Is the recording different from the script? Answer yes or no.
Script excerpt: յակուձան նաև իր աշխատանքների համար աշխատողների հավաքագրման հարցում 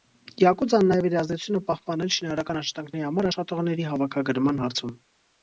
yes